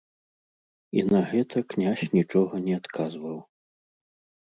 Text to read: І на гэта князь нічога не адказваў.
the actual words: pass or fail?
pass